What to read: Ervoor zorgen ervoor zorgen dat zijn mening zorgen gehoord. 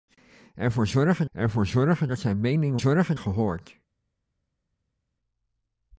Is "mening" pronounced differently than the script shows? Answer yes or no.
no